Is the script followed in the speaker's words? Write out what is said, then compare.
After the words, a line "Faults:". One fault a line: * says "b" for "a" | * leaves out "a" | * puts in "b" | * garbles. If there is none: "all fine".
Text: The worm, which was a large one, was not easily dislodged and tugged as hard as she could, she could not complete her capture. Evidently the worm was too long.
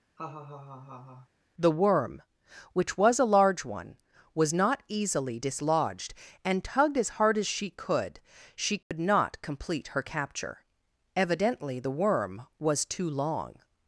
The worm, which was a large one, was not easily dislodged and tugged as hard as she could, she could not complete her capture. Evidently the worm was too long.
Faults:
all fine